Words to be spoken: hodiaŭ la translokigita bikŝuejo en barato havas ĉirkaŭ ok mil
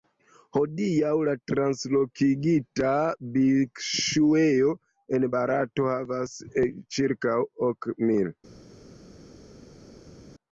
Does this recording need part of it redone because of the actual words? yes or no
no